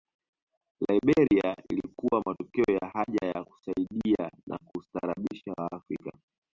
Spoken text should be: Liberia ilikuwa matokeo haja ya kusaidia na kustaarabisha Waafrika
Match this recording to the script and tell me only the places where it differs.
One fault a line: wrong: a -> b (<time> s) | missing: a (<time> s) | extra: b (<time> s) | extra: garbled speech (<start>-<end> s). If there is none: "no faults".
extra: ya (2.8 s)